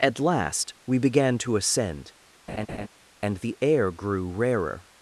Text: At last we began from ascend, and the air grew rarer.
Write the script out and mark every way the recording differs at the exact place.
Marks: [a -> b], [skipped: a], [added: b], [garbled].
At last we began [from -> to] ascend, and the air grew rarer.